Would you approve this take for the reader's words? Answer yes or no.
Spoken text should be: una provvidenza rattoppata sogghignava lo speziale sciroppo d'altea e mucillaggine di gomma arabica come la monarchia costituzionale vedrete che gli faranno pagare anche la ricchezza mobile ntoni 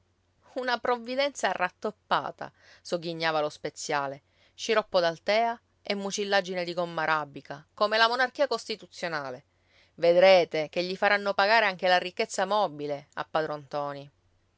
no